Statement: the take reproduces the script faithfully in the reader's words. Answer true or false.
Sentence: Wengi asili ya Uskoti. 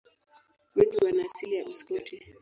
false